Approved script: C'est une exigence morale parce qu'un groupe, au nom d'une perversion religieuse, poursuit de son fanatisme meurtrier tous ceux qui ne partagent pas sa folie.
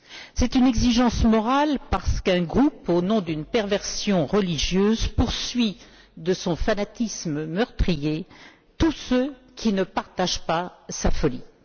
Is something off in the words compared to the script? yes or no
no